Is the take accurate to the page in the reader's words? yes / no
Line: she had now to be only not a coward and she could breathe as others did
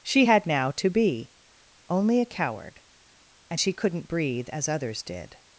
no